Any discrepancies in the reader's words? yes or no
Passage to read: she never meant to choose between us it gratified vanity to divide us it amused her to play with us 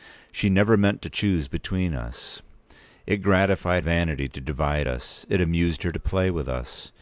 no